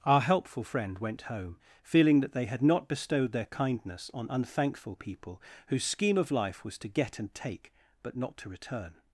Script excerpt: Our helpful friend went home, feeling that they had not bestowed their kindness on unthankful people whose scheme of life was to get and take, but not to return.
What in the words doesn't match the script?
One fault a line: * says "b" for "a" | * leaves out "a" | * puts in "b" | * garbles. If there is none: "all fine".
all fine